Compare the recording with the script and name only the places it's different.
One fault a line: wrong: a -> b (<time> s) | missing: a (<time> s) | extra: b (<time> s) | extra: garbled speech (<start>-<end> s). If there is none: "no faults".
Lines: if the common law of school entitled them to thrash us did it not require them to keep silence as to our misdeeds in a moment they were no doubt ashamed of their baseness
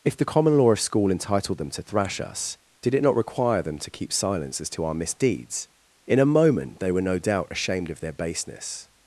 no faults